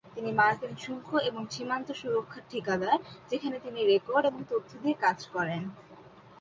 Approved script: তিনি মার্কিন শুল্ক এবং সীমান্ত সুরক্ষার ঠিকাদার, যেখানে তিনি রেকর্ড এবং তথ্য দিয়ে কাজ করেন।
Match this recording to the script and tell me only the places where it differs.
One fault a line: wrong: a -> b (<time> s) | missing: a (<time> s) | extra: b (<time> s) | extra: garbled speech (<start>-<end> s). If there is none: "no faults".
no faults